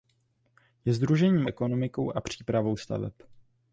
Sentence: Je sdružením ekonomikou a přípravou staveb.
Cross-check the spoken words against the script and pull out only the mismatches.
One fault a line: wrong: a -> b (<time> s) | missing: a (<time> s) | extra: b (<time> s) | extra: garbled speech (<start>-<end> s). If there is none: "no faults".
no faults